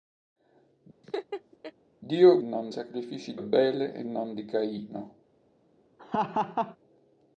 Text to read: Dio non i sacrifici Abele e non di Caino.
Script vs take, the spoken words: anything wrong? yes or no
no